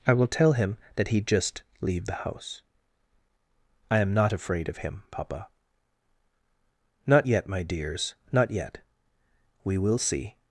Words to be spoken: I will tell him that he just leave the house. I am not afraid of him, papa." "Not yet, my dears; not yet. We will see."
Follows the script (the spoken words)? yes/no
yes